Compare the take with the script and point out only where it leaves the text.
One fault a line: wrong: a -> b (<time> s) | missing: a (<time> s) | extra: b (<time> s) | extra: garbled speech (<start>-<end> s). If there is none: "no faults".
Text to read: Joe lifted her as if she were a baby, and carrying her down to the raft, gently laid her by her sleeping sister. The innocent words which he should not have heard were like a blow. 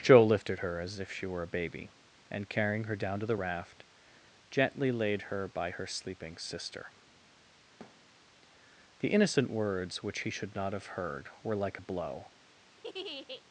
no faults